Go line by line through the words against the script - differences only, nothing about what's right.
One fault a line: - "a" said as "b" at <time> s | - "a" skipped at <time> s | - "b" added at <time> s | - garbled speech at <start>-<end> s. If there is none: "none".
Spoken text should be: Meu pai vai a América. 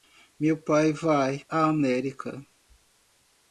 none